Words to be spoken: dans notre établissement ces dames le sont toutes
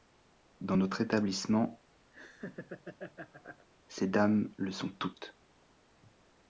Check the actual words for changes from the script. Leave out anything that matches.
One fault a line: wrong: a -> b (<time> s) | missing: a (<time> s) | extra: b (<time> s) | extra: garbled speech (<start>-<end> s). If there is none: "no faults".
no faults